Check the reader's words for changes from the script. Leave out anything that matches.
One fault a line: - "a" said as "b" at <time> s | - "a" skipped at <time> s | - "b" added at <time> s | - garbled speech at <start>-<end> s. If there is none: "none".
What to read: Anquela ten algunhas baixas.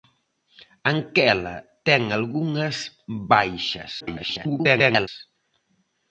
- garbled speech at 4.0-5.1 s